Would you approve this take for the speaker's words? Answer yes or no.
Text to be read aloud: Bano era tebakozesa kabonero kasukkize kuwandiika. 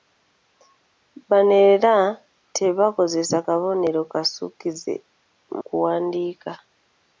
yes